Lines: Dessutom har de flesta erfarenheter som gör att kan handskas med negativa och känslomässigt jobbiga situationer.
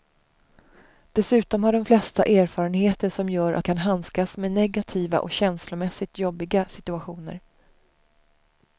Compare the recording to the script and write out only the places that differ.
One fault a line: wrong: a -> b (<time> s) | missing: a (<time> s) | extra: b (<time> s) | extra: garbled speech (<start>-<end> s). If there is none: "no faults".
no faults